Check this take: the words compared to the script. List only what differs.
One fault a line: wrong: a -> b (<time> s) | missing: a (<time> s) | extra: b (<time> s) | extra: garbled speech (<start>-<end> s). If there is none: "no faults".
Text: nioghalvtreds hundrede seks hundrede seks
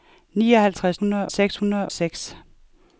no faults